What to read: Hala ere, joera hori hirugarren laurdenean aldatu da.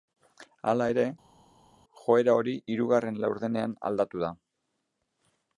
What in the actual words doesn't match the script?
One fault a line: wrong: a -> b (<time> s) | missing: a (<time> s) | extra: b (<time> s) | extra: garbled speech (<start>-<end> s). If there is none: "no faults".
no faults